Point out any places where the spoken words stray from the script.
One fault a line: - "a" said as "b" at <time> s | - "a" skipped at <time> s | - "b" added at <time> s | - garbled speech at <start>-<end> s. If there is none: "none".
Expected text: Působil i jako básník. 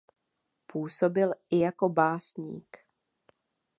none